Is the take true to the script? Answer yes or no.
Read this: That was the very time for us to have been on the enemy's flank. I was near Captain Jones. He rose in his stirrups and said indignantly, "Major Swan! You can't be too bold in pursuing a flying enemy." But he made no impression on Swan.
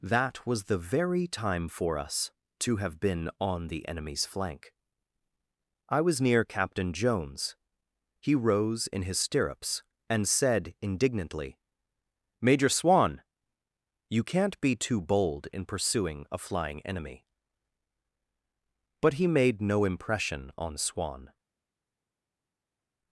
yes